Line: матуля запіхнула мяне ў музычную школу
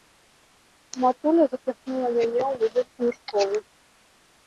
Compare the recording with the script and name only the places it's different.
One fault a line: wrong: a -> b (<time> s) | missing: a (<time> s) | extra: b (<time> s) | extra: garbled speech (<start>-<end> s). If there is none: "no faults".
no faults